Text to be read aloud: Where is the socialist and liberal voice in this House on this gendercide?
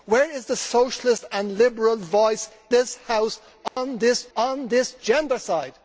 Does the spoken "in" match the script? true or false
false